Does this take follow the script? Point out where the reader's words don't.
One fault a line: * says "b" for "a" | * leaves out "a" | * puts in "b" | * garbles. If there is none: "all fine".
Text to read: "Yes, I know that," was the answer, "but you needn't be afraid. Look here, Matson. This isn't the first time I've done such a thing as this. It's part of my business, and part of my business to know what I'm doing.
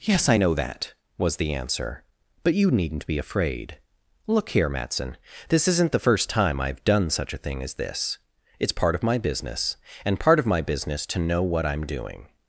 all fine